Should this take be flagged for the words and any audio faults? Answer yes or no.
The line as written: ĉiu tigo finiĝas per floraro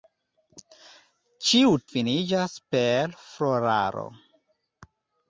yes